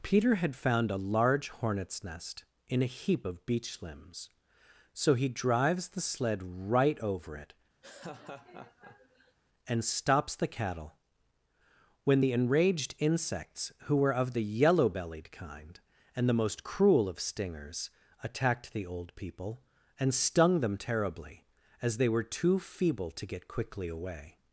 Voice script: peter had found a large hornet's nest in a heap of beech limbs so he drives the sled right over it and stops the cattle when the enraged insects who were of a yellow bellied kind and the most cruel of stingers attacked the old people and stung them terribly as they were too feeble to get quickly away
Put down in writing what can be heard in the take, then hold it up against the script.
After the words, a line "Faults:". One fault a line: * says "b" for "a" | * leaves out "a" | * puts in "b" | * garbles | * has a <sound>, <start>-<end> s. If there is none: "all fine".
peter had found a large hornet's nest in a heap of beech limbs so he drives the sled right over it and stops the cattle when the enraged insects who were of the yellow bellied kind and the most cruel of stingers attacked the old people and stung them terribly as they were too feeble to get quickly away
Faults:
* has a laugh, 7.8-9.4 s
* says "the" for "a"